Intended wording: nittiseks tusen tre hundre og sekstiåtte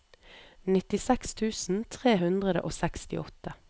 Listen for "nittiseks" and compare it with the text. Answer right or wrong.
right